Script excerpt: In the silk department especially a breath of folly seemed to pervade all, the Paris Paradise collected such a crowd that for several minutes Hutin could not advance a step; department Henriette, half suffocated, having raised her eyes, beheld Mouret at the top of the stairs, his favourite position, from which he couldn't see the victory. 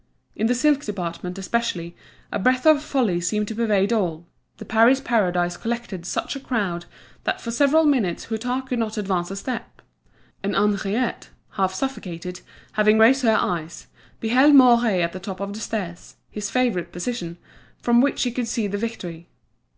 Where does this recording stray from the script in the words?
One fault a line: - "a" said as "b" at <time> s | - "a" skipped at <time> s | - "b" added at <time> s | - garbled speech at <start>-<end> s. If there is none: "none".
- "department" said as "and" at 10.4 s
- "couldn't" said as "could" at 18.3 s